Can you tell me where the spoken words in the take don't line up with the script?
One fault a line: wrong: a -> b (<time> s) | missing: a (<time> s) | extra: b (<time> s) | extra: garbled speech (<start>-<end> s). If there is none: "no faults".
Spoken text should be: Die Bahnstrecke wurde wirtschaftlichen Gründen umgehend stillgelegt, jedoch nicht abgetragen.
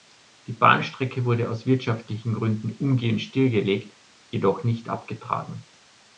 extra: aus (1.5 s)